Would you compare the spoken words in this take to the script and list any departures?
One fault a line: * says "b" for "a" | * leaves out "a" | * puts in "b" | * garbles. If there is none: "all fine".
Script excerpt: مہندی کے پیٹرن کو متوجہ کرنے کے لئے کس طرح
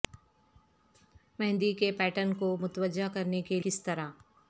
* leaves out "لئے"